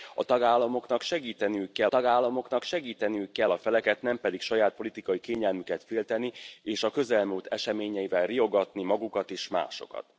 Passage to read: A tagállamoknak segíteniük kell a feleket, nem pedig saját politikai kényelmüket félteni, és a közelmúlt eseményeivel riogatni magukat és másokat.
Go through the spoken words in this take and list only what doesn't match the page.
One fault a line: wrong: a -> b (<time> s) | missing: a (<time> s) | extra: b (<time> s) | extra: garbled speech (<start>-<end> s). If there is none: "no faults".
extra: tagállamoknak segíteniük kell (1.9 s)